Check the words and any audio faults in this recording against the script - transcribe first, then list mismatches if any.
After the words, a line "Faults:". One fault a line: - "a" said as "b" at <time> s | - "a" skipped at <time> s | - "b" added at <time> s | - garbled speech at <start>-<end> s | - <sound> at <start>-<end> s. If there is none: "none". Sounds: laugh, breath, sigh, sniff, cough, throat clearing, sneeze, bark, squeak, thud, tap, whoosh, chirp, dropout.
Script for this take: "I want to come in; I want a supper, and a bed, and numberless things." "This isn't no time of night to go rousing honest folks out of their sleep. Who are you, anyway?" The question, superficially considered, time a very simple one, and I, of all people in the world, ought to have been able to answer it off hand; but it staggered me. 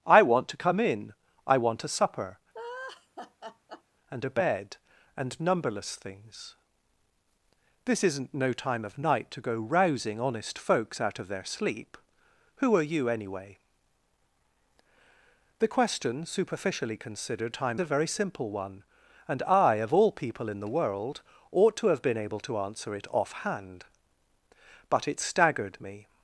"I want to come in; I want a supper, and a bed, and numberless things." "This isn't no time of night to go rousing honest folks out of their sleep. Who are you, anyway?" The question, superficially considered, time a very simple one, and I, of all people in the world, ought to have been able to answer it off hand; but it staggered me.
Faults:
- laugh at 2.5-3.8 s